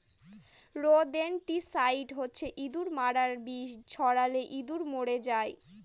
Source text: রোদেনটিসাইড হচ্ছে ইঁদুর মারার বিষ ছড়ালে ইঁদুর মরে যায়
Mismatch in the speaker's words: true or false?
false